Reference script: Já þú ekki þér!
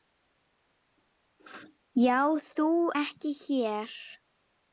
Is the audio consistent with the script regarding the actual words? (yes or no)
yes